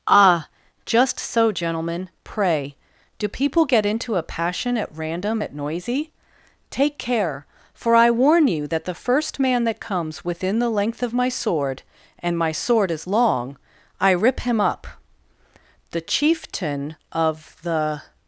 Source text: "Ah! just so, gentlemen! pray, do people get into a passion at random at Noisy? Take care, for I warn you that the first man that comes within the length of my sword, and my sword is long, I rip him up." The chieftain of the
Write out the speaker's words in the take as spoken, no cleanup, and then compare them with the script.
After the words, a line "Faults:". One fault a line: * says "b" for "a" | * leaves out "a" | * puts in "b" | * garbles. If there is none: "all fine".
"Ah! just so, gentlemen! pray, do people get into a passion at random at Noisy? Take care, for I warn you that the first man that comes within the length of my sword, and my sword is long, I rip him up." The chieftain of the
Faults:
all fine